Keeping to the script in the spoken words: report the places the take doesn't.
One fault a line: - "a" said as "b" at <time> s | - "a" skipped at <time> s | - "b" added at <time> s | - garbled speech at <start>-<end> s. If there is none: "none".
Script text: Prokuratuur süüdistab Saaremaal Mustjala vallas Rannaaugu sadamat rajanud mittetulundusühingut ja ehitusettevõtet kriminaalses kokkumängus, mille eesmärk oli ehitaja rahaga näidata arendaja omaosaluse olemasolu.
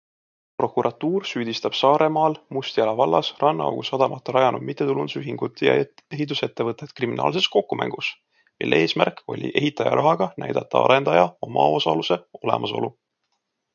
none